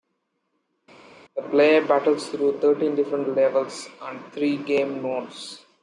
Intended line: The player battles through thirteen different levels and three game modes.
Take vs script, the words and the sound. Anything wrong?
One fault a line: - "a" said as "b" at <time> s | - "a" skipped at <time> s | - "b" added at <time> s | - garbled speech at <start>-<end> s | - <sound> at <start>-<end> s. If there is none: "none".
none